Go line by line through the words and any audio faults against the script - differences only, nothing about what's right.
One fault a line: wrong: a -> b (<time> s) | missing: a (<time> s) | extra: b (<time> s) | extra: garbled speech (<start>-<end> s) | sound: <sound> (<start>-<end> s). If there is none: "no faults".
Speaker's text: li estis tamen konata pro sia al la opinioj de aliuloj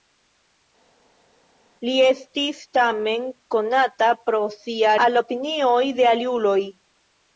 no faults